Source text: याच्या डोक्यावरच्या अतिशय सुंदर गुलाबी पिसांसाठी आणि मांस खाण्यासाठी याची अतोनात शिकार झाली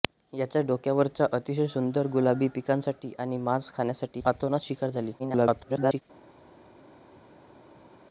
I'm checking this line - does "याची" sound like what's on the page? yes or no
no